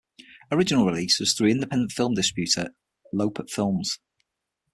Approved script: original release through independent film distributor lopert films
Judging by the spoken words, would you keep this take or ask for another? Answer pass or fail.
fail